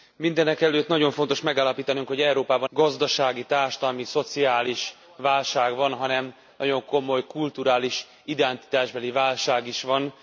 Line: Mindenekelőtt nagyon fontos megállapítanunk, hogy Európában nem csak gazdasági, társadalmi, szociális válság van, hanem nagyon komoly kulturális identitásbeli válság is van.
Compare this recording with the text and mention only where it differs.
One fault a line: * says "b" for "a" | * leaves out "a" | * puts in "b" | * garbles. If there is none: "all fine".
* leaves out "nem csak"